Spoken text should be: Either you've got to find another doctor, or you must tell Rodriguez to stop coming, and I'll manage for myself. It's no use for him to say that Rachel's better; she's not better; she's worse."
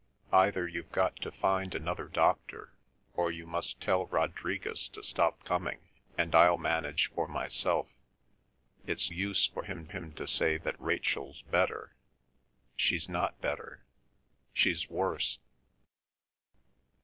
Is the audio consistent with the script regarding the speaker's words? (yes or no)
no